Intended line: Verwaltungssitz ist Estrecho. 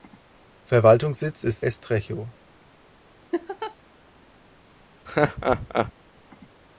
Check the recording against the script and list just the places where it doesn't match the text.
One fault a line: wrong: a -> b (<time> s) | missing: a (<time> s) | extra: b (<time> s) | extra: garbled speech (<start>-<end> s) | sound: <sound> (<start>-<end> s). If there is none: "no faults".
sound: laugh (3.3-3.8 s)
sound: laugh (5.1-5.9 s)